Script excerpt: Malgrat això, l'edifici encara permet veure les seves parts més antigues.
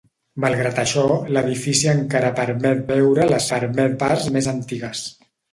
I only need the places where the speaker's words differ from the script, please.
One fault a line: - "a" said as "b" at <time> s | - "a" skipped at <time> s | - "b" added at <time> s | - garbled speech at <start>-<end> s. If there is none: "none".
- "seves" said as "permet" at 3.5 s